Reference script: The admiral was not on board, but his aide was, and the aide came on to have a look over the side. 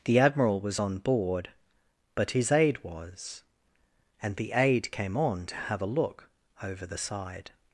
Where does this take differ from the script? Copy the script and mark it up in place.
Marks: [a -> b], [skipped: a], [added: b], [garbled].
The admiral was [skipped: not] on board, but his aide was, and the aide came on to have a look over the side.